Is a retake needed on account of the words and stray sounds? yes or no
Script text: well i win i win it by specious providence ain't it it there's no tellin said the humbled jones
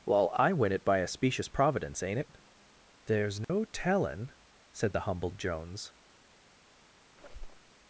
yes